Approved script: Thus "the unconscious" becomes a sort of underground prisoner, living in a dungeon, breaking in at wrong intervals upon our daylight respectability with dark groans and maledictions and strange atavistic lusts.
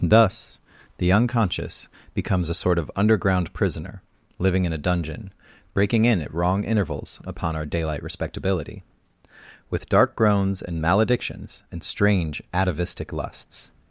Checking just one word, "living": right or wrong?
right